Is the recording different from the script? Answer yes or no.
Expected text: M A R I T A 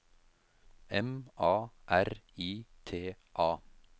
no